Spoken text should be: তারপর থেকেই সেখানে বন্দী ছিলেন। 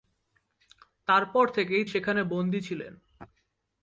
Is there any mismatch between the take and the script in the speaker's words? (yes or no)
no